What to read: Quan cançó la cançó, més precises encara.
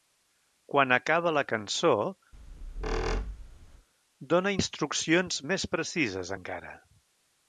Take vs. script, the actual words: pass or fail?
fail